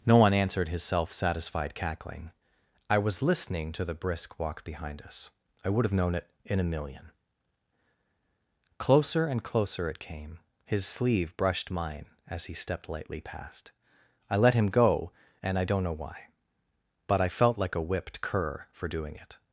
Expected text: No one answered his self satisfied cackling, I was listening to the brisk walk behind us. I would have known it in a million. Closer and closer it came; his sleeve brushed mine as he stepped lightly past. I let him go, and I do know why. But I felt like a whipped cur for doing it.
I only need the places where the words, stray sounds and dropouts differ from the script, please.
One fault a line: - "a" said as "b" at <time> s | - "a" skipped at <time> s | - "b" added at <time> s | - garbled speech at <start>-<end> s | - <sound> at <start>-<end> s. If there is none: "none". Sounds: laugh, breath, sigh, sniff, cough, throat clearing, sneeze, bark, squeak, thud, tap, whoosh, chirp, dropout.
- "do" said as "don't" at 15.6 s